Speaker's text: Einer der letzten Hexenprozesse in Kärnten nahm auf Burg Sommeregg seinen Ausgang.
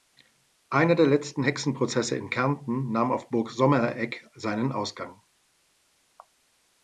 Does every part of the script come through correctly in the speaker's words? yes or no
yes